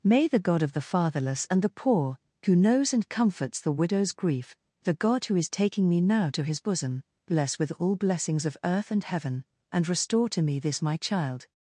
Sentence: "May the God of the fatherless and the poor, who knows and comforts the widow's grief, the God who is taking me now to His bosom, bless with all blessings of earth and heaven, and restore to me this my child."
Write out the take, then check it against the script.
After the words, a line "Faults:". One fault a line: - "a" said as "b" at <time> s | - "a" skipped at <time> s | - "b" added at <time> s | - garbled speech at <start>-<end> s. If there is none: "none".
"May the God of the fatherless and the poor, who knows and comforts the widow's grief, the God who is taking me now to His bosom, bless with all blessings of earth and heaven, and restore to me this my child."
Faults:
none